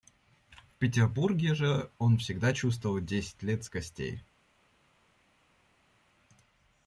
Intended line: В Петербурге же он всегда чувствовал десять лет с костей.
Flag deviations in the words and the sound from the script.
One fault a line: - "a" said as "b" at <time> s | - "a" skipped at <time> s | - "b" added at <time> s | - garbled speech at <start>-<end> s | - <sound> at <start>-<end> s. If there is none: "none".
none